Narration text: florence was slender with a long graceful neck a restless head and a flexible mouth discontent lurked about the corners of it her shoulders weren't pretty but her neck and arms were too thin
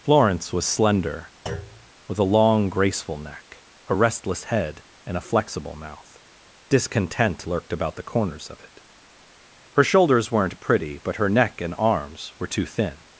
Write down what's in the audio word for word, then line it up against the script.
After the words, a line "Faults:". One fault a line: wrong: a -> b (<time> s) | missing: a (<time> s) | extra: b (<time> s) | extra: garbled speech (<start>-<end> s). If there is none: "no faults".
florence was slender with a long graceful neck a restless head and a flexible mouth discontent lurked about the corners of it her shoulders weren't pretty but her neck and arms were too thin
Faults:
no faults